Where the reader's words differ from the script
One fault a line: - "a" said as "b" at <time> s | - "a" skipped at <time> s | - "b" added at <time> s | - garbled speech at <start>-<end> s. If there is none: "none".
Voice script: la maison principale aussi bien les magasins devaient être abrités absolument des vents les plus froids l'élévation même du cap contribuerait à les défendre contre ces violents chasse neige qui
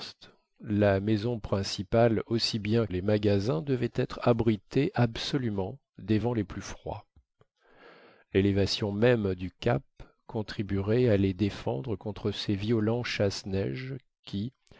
none